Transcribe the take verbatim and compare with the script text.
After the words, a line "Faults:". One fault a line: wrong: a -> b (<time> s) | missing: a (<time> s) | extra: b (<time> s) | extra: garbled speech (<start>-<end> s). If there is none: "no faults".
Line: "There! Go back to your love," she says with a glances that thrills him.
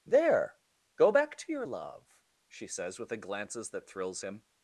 "There! Go back to your love," she says with a glances that thrills him.
Faults:
no faults